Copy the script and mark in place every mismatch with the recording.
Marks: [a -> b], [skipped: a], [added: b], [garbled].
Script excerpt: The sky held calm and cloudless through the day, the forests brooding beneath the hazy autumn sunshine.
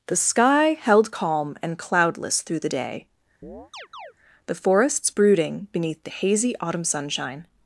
The sky held calm and cloudless through the day, the forests brooding beneath the hazy autumn sunshine.